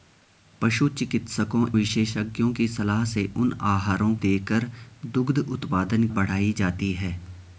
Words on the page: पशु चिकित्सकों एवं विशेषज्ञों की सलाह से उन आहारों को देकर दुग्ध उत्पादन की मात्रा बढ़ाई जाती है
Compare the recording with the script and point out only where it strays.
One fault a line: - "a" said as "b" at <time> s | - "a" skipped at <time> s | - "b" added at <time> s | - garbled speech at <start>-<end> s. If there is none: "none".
- "एवं" skipped at 1.6 s
- "को" skipped at 4.1 s
- "की मात्रा" skipped at 6.1 s